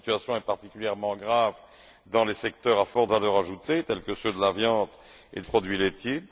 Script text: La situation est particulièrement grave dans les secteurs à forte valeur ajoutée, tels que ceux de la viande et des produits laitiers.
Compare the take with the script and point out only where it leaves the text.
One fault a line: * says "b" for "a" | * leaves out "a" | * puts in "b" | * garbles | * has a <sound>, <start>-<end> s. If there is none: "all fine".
* leaves out "des"